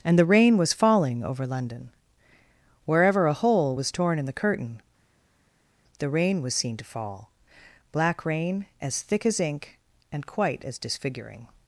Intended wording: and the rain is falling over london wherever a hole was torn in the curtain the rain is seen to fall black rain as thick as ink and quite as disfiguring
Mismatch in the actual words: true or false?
true